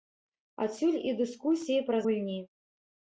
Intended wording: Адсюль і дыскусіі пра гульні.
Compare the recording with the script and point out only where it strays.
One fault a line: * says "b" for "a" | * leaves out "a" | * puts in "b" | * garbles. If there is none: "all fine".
all fine